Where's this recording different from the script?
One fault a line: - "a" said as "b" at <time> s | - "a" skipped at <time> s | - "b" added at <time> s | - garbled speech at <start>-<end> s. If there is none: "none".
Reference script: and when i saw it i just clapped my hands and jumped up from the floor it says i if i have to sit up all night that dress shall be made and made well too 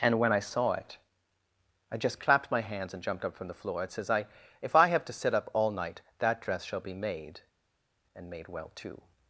none